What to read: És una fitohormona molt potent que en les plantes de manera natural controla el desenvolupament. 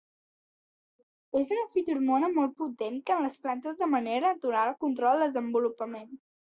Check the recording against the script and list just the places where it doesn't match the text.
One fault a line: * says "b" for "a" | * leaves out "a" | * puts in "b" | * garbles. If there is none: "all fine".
all fine